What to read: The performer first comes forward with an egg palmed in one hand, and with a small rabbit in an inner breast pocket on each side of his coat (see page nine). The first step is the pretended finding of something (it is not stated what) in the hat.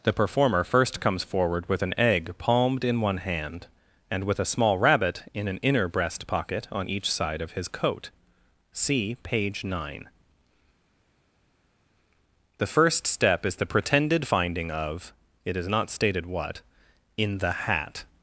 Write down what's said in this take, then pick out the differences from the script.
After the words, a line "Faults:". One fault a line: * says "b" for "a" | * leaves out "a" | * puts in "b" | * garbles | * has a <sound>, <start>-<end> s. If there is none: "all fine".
The performer first comes forward with an egg palmed in one hand, and with a small rabbit in an inner breast pocket on each side of his coat (see page nine). The first step is the pretended finding of (it is not stated what) in the hat.
Faults:
* leaves out "something"